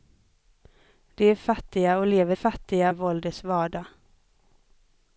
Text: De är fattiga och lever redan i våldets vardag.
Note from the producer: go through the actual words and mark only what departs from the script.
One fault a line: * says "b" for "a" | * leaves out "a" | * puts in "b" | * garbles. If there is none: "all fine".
* says "fattiga" for "redan"